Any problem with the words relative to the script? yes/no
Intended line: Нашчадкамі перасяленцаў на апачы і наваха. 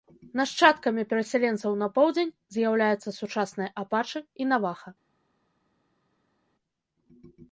yes